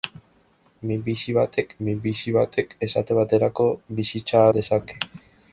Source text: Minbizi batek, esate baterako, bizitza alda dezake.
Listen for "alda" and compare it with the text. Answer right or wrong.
wrong